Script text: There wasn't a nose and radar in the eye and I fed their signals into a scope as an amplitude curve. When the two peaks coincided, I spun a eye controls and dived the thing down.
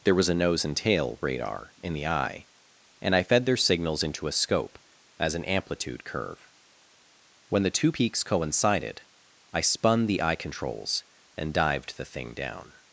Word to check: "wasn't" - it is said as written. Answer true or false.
false